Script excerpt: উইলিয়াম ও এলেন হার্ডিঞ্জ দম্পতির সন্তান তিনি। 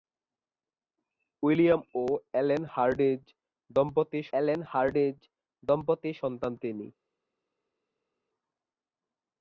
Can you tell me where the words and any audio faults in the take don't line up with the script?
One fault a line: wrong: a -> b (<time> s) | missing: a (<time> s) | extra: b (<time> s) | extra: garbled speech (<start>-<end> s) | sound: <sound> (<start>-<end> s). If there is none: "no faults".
extra: এলেন হার্ডিঞ্জ দম্পতির (4.4 s)